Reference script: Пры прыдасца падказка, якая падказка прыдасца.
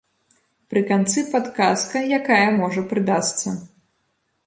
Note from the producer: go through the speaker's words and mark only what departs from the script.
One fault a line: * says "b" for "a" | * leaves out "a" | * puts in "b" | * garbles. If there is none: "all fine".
* says "канцы" for "прыдасца"
* says "можа" for "падказка"